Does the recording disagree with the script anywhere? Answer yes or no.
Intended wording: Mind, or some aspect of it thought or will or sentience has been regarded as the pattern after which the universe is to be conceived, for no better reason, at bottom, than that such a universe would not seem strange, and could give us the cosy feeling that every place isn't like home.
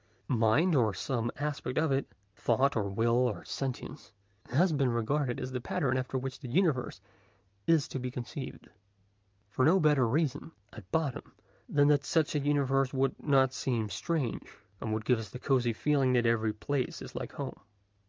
yes